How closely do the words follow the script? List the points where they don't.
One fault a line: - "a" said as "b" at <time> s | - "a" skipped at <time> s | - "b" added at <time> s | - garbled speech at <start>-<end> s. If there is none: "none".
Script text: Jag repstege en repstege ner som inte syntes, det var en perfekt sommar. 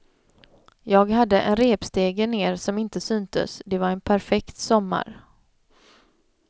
- "repstege" said as "hade" at 1.1 s